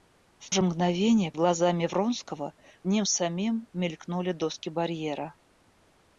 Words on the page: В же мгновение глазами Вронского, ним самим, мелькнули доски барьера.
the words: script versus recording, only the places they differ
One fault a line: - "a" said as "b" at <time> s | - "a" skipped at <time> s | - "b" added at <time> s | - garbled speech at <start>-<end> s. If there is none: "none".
none